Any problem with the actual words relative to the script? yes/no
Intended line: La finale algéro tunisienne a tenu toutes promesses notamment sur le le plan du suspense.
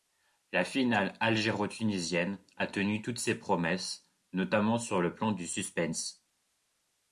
yes